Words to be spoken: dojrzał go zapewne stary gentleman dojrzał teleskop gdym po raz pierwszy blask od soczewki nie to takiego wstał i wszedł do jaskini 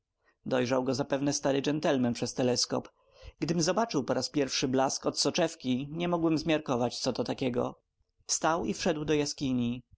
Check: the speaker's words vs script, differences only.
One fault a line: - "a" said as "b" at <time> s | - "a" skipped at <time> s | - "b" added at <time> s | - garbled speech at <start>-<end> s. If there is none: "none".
- "dojrzał" said as "przez" at 2.1 s
- "zobaczył" added at 3.6 s
- "mogłem zmiarkować co" added at 6.1 s